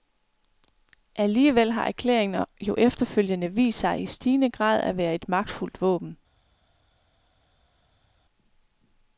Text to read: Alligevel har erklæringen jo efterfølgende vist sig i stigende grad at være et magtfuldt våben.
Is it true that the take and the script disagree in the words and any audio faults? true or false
false